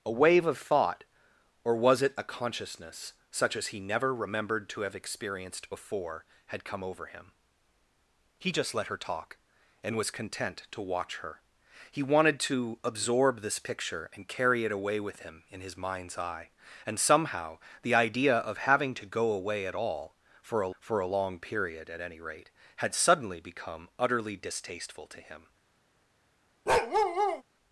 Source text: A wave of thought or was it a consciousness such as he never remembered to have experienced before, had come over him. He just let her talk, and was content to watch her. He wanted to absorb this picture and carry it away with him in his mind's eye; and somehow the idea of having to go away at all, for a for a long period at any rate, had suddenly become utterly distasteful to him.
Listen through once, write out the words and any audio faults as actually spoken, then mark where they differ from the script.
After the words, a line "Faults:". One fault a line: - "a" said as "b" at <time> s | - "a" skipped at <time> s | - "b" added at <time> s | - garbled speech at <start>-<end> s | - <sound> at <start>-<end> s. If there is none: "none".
A wave of thought or was it a consciousness such as he never remembered to have experienced before, had come over him. He just let her talk, and was content to watch her. He wanted to absorb this picture and carry it away with him in his mind's eye; and somehow the idea of having to go away at all, for a for a long period at any rate, had suddenly become utterly distasteful to him.
Faults:
- bark at 26.7-27.4 s